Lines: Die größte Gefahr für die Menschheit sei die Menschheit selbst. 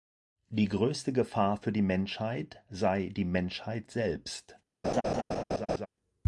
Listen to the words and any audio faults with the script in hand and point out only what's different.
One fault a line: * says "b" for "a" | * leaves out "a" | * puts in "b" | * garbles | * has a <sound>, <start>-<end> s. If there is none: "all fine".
* has a laugh, 4.8-5.9 s